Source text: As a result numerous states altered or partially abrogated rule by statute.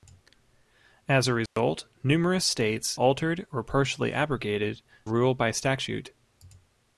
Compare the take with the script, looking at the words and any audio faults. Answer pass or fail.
fail